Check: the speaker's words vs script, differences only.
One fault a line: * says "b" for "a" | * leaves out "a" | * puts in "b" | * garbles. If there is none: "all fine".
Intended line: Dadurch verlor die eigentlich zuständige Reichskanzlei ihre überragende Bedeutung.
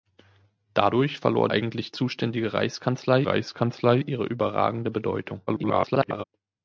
* leaves out "die"
* puts in "Reichskanzlei"
* garbles